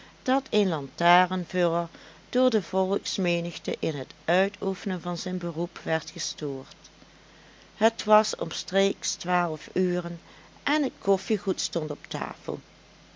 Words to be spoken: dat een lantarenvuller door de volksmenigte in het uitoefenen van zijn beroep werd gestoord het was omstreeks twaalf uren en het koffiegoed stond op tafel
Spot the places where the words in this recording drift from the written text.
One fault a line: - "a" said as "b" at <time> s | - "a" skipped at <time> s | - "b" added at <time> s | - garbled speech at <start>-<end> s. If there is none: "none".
none